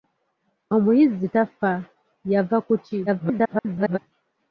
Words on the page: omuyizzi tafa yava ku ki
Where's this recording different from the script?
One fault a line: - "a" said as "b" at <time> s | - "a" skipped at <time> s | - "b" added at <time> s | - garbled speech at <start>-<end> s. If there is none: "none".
- garbled speech at 3.1-4.0 s